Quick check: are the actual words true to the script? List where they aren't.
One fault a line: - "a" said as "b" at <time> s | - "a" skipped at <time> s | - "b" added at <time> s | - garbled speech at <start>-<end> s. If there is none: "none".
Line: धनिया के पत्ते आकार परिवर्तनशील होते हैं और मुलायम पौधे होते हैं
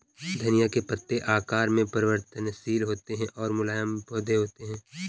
- "में" added at 1.7 s